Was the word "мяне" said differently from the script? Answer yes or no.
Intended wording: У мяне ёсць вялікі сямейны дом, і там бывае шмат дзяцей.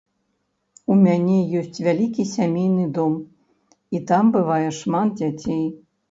no